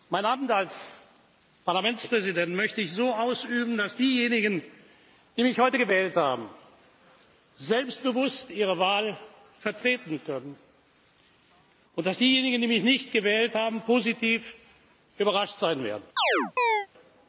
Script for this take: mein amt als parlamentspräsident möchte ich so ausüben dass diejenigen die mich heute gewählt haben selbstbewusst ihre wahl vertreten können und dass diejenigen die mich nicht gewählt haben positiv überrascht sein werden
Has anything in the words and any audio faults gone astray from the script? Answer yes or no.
yes